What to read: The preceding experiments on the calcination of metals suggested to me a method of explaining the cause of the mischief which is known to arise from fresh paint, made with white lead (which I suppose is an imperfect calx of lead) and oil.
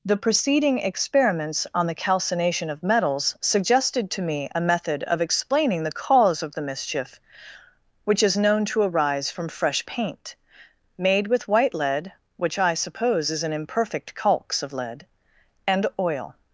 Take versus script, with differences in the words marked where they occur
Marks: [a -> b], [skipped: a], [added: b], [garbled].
The preceding experiments on the calcination of metals suggested to me a method of explaining the cause of the mischief which is known to arise from fresh paint, made with white lead (which I suppose is an imperfect calx of lead) and oil.